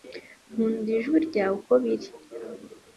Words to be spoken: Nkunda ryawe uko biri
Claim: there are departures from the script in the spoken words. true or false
true